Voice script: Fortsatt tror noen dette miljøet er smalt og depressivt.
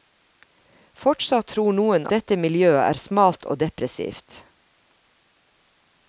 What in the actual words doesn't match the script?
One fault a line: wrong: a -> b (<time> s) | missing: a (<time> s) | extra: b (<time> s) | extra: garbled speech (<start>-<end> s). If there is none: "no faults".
no faults